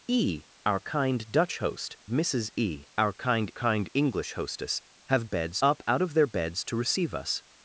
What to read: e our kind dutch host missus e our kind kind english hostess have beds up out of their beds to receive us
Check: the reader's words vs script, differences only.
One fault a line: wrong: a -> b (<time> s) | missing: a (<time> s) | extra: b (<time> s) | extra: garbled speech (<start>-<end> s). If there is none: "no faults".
no faults